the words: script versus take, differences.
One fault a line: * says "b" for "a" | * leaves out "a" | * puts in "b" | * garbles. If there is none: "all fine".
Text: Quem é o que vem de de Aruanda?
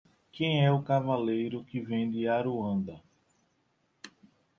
* puts in "cavaleiro"
* leaves out "de"